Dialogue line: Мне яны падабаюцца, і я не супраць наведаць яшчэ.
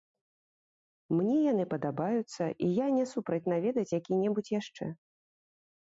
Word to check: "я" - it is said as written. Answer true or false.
true